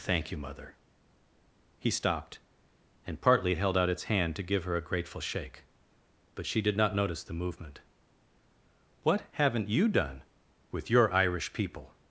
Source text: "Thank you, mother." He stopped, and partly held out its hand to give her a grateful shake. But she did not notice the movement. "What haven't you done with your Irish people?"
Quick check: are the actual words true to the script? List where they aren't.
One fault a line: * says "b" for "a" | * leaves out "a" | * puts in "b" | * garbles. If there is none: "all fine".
all fine